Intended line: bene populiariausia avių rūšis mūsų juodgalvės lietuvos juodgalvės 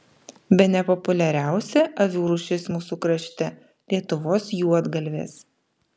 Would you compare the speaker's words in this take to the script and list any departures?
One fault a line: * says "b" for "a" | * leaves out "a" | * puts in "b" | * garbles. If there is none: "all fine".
* says "krašte" for "juodgalvės"